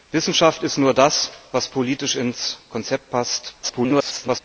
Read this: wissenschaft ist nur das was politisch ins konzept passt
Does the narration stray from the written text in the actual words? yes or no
yes